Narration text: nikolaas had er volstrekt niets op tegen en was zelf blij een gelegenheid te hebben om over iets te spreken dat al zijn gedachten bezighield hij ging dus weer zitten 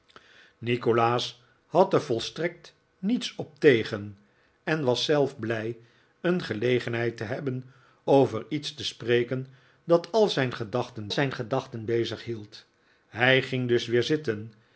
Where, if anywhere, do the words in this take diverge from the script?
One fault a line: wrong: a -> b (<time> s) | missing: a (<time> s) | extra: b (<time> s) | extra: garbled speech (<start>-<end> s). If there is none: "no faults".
missing: om (7.7 s)
extra: zijn gedachten (11.1 s)